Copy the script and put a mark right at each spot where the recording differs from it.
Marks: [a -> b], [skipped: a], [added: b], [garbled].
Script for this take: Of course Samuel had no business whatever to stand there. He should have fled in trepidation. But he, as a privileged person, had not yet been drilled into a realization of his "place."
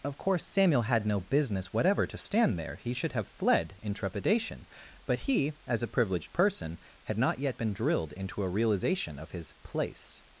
Of course Samuel had no business whatever to stand there. He should have fled in trepidation. But he, as a privileged person, had not yet been drilled into a realization of his "place."